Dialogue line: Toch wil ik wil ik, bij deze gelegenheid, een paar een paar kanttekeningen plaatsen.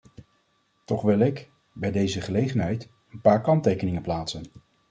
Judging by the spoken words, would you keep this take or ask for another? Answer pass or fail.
fail